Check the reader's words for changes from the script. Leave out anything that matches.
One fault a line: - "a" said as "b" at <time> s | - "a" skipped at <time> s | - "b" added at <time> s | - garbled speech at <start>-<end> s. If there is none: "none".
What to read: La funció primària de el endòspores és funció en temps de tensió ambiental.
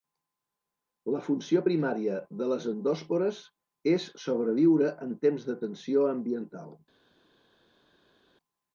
- "el" said as "les" at 2.5 s
- "funció" said as "sobreviure" at 4.3 s